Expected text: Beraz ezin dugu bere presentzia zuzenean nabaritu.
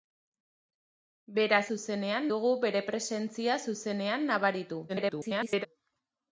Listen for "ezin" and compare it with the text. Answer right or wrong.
wrong